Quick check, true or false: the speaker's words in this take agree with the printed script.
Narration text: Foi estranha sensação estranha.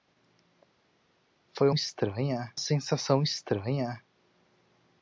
true